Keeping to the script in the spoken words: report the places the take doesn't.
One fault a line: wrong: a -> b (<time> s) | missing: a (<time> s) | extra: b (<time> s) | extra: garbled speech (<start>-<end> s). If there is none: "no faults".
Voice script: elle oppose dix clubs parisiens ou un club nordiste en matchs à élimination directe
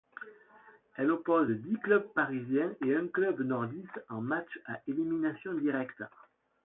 wrong: ou -> et (2.8 s)